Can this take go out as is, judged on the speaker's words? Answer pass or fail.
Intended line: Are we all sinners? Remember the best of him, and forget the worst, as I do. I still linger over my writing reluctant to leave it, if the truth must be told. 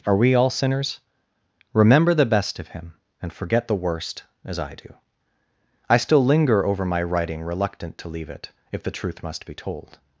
pass